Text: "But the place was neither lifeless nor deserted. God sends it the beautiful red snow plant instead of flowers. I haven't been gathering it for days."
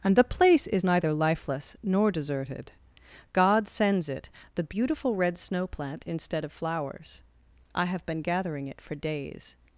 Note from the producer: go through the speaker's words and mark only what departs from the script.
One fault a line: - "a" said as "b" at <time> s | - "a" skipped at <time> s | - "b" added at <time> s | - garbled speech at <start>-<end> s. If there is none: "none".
- "But" said as "And" at 0.0 s
- "was" said as "is" at 0.7 s
- "haven't" said as "have" at 7.9 s